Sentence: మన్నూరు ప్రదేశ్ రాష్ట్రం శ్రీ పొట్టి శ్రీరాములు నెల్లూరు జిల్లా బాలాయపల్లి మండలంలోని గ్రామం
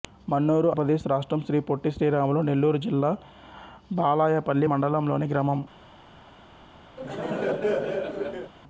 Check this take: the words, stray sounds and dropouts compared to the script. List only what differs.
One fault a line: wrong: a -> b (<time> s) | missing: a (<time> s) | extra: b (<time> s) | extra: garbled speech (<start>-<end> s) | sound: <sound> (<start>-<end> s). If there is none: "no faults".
sound: laugh (7.0-8.5 s)